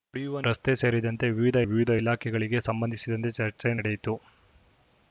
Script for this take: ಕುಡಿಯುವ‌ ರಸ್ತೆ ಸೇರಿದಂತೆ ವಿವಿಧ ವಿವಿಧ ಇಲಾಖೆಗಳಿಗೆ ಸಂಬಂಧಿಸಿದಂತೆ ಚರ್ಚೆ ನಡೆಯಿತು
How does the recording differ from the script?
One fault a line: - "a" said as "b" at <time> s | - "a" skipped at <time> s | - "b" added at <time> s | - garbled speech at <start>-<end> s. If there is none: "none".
none